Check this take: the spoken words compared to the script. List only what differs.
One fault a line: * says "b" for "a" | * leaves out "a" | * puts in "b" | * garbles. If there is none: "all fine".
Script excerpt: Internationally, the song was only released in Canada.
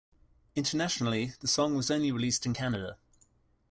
all fine